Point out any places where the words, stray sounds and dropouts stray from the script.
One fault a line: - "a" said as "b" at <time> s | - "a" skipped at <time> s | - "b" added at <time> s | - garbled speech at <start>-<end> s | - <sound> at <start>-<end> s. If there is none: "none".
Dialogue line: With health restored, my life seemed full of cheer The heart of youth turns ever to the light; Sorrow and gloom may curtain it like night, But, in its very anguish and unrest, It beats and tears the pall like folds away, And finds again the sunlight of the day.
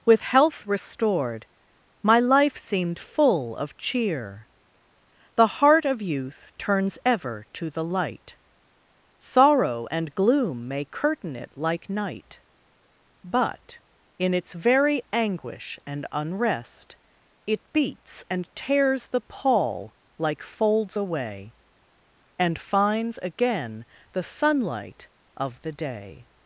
none